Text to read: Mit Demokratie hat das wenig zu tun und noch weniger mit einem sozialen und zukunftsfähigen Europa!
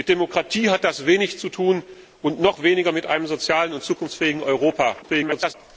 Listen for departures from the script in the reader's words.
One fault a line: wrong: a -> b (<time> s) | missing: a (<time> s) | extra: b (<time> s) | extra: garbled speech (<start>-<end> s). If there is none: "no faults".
extra: garbled speech (5.0-5.5 s)